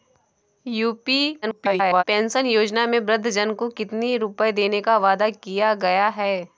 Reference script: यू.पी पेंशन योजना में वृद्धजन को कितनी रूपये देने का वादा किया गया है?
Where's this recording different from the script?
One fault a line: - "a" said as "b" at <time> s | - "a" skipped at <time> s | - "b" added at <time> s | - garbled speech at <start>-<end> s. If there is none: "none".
- garbled speech at 1.4-2.0 s